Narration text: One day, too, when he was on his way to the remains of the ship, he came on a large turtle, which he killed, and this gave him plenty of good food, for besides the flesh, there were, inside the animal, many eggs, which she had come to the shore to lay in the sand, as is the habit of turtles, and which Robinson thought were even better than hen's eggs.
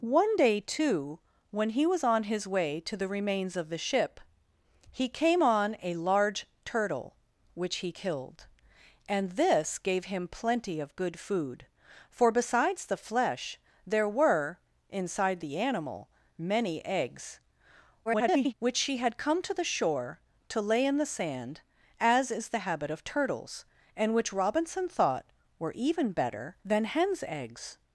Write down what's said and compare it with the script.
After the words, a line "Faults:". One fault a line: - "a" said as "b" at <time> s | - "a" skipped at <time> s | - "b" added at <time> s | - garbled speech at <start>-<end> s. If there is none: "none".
One day, too, when he was on his way to the remains of the ship, he came on a large turtle, which he killed, and this gave him plenty of good food, for besides the flesh, there were, inside the animal, many eggs, [garbled] which she had come to the shore to lay in the sand, as is the habit of turtles, and which Robinson thought were even better than hen's eggs.
Faults:
- garbled speech at 18.1-18.5 s